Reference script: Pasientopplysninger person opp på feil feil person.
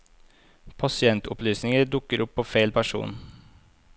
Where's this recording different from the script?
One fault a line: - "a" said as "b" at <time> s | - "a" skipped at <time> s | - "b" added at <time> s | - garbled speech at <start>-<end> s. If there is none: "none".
- "person" said as "dukker" at 1.9 s
- "feil" skipped at 2.7 s